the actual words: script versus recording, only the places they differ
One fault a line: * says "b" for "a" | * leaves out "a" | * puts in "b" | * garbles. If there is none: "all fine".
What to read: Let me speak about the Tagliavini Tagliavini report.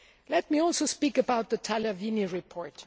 * puts in "also"
* leaves out "Tagliavini"